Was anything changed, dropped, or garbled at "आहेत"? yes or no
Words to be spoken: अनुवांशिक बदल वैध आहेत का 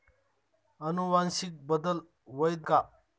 yes